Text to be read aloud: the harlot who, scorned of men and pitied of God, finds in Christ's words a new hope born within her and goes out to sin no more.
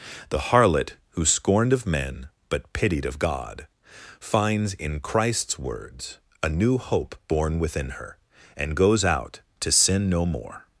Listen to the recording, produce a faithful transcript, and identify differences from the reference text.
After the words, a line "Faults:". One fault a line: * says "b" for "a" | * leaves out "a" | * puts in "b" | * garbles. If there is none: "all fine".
the harlot who, scorned of men but pitied of God, finds in Christ's words a new hope born within her and goes out to sin no more.
Faults:
* says "but" for "and"